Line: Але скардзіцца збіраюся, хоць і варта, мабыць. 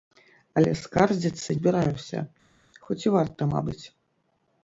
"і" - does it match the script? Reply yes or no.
yes